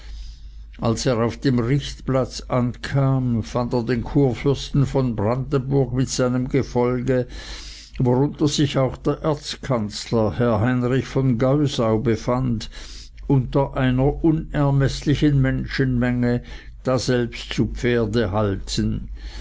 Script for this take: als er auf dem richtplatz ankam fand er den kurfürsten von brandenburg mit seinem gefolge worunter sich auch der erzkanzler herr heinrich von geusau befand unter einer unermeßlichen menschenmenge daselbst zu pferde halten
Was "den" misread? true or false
false